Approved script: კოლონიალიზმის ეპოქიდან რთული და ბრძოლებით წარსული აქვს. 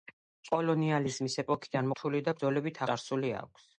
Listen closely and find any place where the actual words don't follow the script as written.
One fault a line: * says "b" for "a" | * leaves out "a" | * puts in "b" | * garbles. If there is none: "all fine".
all fine